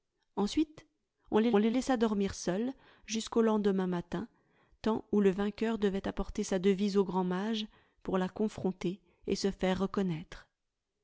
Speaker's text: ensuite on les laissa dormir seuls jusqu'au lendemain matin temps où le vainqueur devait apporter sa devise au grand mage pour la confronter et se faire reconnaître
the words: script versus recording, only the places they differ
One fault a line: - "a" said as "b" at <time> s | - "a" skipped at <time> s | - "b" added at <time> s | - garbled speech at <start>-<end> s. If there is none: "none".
- "les" added at 1.6 s